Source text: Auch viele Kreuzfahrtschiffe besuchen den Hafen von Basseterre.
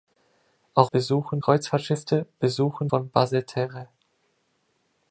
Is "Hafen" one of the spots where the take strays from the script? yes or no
yes